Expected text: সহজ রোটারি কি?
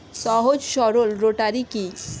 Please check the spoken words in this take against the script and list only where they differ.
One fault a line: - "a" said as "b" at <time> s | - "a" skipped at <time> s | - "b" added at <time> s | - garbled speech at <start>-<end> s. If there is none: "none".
- "সরল" added at 0.7 s